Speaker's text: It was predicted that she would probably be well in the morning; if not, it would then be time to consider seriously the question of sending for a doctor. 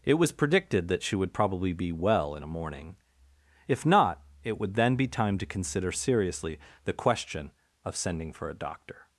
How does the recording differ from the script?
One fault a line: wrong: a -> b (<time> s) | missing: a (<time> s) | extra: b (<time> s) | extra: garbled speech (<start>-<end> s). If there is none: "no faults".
wrong: the -> a (2.4 s)